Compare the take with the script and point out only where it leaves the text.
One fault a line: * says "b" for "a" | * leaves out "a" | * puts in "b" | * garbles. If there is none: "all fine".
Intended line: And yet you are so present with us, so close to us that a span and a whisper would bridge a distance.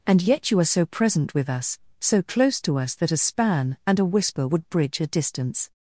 all fine